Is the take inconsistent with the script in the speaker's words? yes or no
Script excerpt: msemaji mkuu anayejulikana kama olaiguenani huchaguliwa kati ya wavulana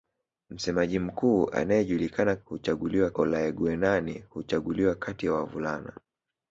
yes